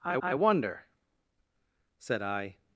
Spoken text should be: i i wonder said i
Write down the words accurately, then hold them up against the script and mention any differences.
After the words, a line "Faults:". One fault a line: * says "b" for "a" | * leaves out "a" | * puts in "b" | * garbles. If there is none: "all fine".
i i wonder said i
Faults:
all fine